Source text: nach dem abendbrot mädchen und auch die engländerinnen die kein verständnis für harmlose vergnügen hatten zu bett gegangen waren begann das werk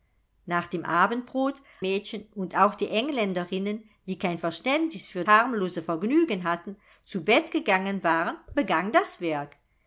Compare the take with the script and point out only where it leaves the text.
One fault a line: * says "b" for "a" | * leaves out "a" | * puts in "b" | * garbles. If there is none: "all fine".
all fine